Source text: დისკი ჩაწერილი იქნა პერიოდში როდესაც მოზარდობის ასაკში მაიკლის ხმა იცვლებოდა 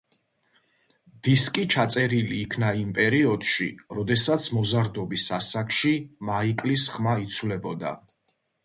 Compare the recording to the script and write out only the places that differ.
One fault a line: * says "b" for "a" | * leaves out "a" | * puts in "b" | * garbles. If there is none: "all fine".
* puts in "იმ"